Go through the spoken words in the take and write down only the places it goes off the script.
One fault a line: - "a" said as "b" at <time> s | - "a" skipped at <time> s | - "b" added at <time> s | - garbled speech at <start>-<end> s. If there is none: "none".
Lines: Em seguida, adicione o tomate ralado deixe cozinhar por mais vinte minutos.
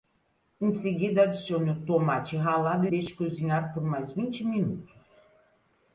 none